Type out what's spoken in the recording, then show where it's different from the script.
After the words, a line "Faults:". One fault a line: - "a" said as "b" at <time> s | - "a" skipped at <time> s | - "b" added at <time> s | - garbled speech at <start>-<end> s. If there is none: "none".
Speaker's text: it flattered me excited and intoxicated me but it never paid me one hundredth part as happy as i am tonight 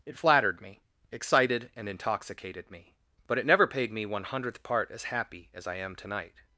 it flattered me excited and intoxicated me but it never paid me one hundredth part as happy as i am tonight
Faults:
none